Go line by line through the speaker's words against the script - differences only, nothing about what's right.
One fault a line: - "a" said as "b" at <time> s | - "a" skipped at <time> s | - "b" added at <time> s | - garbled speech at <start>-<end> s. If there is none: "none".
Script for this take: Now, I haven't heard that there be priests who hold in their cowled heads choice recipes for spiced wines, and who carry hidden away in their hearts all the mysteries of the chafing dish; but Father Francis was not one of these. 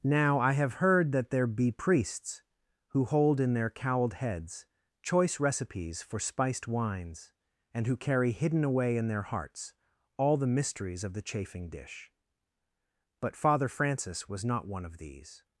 - "haven't" said as "have" at 0.5 s